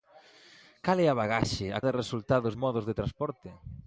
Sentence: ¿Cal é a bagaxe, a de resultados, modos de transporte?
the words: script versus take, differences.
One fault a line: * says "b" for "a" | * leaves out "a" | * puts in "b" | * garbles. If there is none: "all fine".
all fine